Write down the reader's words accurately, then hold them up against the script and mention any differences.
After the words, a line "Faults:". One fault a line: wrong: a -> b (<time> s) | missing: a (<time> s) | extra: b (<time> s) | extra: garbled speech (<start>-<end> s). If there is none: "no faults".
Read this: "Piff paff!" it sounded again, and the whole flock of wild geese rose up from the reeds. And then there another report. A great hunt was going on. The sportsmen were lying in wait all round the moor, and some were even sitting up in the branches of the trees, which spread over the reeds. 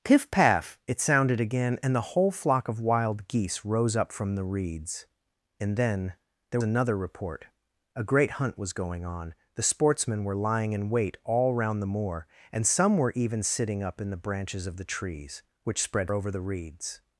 "Piff paff!" it sounded again, and the whole flock of wild geese rose up from the reeds. And then there another report. A great hunt was going on. The sportsmen were lying in wait all round the moor, and some were even sitting up in the branches of the trees, which spread over the reeds.
Faults:
no faults